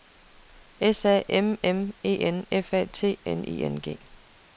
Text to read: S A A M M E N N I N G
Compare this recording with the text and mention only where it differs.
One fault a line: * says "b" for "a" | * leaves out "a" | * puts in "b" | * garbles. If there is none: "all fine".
* leaves out "A"
* puts in "F A T"